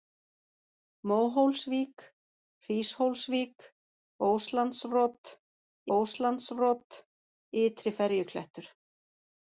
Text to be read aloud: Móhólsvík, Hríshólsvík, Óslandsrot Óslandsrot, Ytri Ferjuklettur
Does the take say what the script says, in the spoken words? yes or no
yes